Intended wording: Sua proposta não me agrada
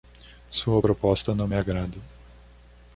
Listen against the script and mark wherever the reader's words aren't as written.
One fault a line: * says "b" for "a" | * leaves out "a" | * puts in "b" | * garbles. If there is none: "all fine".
all fine